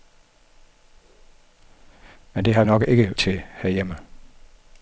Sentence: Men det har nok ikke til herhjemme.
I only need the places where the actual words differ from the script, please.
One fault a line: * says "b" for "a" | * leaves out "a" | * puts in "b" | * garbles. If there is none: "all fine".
all fine